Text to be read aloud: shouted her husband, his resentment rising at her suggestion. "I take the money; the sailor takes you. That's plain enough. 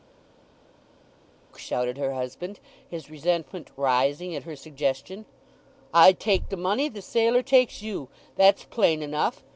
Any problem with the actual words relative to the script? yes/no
no